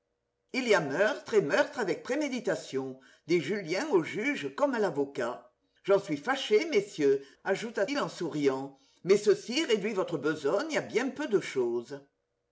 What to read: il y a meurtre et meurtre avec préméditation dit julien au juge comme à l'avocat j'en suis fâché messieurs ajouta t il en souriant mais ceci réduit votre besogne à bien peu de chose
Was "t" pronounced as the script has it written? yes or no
no